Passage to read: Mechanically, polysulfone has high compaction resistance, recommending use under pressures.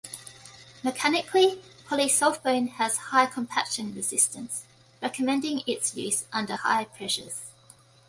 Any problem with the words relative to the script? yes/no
yes